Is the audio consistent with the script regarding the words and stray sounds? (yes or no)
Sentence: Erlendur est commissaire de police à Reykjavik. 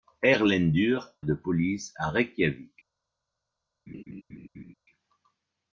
no